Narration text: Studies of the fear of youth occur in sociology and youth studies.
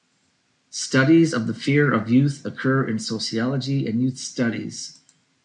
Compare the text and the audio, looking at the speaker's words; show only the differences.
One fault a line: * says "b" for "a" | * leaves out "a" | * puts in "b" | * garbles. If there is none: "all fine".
all fine